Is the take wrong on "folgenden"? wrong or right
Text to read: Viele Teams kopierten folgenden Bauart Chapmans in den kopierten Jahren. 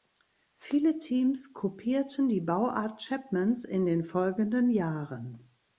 wrong